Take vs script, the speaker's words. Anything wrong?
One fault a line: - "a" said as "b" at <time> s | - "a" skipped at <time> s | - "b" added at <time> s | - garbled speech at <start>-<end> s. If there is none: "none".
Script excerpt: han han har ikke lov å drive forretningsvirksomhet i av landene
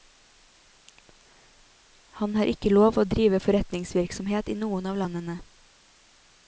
- "han" skipped at 2.4 s
- "noen" added at 4.6 s